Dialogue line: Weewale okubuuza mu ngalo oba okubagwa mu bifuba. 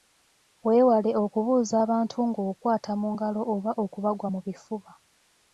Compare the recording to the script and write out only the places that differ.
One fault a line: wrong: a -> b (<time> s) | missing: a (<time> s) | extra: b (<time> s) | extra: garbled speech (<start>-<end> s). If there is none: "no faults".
extra: abantu ng'okwata (1.8 s)